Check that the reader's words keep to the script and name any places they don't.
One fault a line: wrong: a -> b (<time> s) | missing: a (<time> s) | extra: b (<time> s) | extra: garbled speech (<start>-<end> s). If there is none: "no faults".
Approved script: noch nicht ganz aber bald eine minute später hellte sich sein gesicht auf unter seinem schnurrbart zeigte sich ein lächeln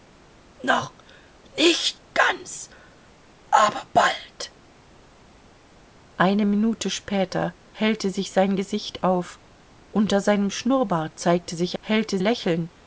wrong: ein -> hellte (11.8 s)